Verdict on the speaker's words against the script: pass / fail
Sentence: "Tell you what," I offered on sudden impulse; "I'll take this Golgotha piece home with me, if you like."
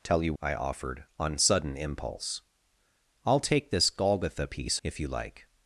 fail